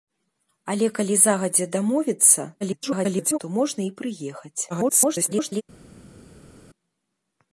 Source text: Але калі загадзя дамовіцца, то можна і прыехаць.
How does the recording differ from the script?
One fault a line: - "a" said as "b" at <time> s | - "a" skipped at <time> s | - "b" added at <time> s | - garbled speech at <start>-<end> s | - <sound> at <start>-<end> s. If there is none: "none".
- garbled speech at 2.6-3.4 s
- garbled speech at 4.7-5.6 s